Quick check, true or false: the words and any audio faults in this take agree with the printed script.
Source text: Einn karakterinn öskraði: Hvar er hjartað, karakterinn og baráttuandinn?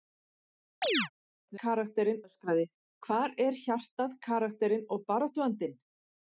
false